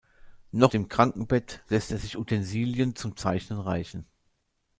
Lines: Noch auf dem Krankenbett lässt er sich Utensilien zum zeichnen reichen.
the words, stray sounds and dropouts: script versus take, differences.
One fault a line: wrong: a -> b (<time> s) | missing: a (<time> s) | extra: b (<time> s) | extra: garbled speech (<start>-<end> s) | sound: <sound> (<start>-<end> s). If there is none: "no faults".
missing: auf (0.7 s)